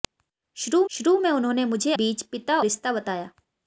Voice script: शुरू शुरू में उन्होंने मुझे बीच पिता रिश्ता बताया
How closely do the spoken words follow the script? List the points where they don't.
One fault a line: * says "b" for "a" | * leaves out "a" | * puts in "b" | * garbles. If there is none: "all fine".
all fine